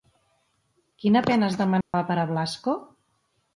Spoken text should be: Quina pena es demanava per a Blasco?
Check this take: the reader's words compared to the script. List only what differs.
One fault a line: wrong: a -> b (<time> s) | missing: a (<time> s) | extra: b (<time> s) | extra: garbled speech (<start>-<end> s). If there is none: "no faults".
no faults